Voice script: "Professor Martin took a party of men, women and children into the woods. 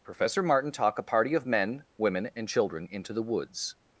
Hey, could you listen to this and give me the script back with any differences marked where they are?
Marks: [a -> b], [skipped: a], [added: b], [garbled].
"Professor Martin [took -> talk] a party of men, women and children into the woods.